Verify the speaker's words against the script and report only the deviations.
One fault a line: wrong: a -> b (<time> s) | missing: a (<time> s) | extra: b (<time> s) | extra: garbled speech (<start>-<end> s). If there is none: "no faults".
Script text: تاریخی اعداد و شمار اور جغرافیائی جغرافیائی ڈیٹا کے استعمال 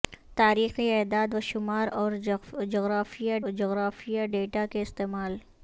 no faults